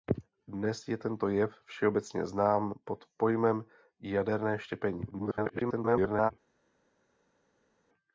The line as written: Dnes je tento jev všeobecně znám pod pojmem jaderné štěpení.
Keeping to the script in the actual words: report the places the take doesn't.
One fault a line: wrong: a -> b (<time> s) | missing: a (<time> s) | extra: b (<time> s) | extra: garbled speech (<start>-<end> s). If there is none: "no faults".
extra: garbled speech (5.1-6.3 s)